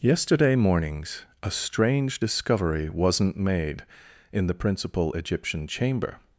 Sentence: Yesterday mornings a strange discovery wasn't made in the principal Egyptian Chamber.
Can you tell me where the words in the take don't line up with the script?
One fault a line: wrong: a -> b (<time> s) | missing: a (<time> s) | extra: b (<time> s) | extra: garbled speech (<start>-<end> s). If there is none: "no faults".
no faults